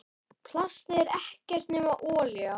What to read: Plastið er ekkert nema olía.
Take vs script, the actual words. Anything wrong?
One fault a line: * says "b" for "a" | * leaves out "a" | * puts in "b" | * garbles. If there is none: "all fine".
all fine